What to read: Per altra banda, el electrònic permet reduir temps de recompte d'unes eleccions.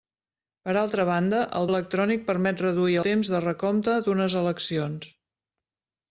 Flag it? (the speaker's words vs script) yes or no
no